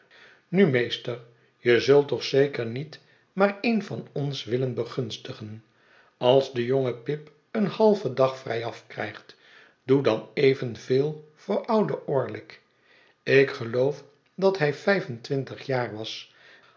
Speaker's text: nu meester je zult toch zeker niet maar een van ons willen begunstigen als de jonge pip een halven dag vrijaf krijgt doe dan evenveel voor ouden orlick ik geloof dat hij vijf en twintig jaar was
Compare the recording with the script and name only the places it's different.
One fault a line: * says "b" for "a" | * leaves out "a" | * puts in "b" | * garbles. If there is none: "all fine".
all fine